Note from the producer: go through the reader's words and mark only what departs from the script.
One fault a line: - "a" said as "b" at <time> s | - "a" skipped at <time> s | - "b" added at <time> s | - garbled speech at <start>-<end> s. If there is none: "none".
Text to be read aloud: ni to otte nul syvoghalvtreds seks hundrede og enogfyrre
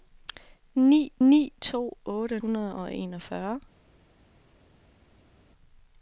- "ni" added at 1.3 s
- "nul syvoghalvtreds seks" skipped at 2.4 s